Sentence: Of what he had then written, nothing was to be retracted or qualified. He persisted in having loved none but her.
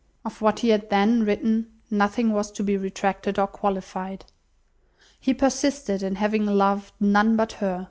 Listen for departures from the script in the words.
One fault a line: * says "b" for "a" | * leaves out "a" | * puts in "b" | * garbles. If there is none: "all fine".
all fine